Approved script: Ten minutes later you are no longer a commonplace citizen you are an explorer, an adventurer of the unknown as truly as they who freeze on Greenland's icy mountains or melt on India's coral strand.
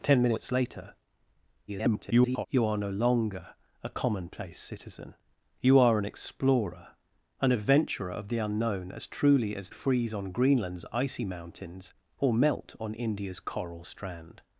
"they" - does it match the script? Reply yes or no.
no